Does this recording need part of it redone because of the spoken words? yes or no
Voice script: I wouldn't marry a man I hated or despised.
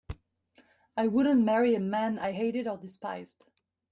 no